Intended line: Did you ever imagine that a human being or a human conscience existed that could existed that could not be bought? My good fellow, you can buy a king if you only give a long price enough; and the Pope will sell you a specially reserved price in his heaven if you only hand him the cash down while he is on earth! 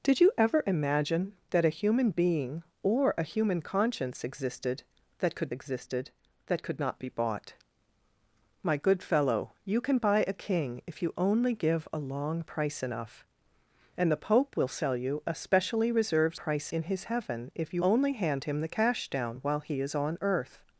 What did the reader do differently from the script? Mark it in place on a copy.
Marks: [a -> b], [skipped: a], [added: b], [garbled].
Did you ever imagine that a human being or a human conscience existed that could existed that could not be bought? My good fellow, you can buy a king if you only give a long price enough; and the Pope will sell you a specially reserved price in his heaven if you only hand him the cash down while he is on earth!